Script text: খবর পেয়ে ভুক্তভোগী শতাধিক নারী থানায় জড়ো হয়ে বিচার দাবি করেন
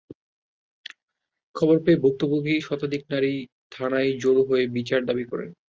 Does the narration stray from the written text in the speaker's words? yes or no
no